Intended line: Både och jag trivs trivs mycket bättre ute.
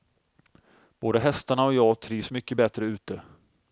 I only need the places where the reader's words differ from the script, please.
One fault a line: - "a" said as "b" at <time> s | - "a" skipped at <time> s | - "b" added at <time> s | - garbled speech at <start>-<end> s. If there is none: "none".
- "hästarna" added at 1.2 s
- "trivs" skipped at 2.3 s